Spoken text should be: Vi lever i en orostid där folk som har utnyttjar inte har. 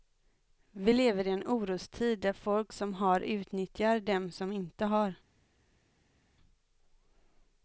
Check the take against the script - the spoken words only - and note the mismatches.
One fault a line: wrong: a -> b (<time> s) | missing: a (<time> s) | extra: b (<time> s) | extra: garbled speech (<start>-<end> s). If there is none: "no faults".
extra: dem som (4.0 s)